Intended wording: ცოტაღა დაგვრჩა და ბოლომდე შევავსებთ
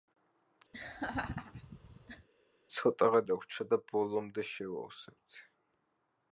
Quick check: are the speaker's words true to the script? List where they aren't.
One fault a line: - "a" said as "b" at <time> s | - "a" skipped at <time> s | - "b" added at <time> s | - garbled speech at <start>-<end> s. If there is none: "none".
none